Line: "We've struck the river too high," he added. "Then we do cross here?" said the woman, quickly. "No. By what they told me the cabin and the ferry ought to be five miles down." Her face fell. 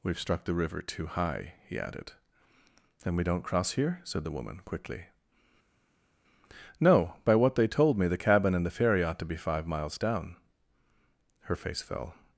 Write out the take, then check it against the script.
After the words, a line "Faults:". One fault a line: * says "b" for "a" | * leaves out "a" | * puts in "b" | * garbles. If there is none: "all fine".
"We've struck the river too high," he added. "Then we don't cross here?" said the woman, quickly. "No. By what they told me the cabin and the ferry ought to be five miles down." Her face fell.
Faults:
* says "don't" for "do"